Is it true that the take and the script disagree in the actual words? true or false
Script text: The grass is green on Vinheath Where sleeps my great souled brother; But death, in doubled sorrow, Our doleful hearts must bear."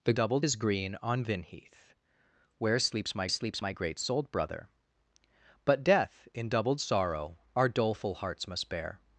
true